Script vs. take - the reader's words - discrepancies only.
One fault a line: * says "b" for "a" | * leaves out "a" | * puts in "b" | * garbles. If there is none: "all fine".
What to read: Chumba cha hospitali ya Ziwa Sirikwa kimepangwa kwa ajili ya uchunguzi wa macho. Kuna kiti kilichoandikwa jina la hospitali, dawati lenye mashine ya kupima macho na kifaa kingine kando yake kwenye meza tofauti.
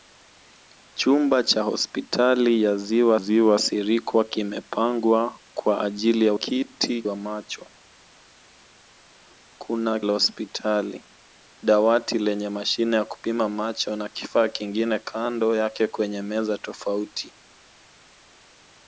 * puts in "Ziwa"
* says "kiti" for "uchunguzi"
* leaves out "kiti kilichoandikwa jina"